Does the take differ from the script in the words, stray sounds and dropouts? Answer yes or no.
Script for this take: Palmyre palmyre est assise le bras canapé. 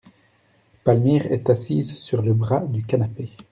yes